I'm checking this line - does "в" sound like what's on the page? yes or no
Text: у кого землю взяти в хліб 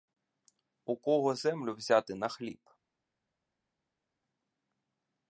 no